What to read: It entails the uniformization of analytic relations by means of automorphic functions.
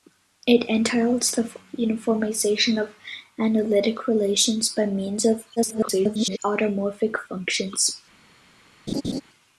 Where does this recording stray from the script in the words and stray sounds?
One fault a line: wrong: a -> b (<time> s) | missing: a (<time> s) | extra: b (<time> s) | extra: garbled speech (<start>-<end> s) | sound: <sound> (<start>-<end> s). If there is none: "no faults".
extra: garbled speech (5.6-6.4 s)
sound: laugh (8.9-9.2 s)